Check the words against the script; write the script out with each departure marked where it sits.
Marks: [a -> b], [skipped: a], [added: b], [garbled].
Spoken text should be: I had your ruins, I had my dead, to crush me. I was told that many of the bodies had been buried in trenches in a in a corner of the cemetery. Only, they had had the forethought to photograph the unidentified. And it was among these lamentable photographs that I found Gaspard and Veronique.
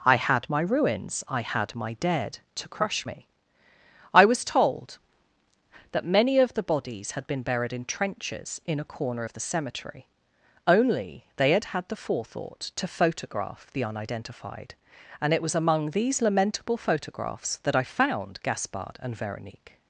I had [your -> my] ruins, I had my dead, to crush me. I was told that many of the bodies had been buried in trenches in a [skipped: in a] corner of the cemetery. Only, they had had the forethought to photograph the unidentified. And it was among these lamentable photographs that I found Gaspard and Veronique.